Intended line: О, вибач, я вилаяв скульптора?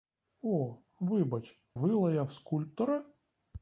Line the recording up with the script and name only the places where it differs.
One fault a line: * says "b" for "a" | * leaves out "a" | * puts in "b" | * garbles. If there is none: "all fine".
* leaves out "я"